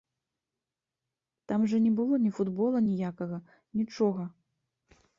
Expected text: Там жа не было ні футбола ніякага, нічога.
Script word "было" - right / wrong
right